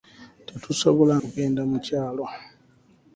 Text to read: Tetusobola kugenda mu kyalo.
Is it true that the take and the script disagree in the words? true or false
false